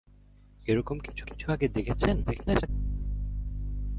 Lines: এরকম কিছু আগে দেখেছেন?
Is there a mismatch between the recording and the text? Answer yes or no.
yes